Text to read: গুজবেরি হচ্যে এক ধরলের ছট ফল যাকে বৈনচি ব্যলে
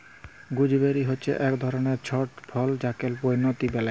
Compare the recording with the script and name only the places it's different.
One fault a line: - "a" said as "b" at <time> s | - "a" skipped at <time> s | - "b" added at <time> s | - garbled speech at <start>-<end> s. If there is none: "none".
none